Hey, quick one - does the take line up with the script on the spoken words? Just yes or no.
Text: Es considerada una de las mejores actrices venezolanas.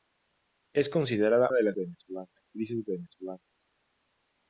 no